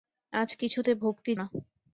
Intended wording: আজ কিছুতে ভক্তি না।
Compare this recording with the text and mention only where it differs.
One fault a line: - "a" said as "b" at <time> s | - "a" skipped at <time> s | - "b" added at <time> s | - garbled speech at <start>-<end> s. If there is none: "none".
none